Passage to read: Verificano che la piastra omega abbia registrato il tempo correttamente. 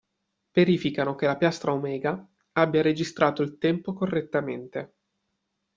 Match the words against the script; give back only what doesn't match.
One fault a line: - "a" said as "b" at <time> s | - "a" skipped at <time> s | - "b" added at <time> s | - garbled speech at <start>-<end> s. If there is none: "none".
none